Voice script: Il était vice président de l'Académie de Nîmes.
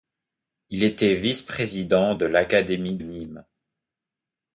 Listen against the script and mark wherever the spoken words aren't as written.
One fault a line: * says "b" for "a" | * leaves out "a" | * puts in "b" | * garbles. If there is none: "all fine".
* leaves out "de"